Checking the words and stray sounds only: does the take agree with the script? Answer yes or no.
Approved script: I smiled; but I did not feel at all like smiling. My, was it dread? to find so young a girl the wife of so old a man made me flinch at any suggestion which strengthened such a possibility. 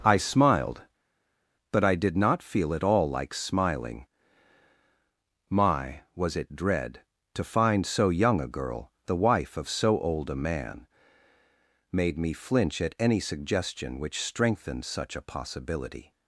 yes